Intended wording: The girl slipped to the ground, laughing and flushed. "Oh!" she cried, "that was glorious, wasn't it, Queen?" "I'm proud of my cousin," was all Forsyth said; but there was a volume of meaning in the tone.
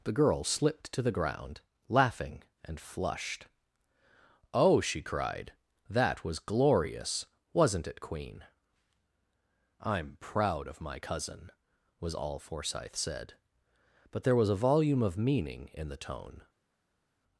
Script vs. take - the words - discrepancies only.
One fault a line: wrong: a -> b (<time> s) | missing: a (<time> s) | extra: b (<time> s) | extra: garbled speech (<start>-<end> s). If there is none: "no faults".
no faults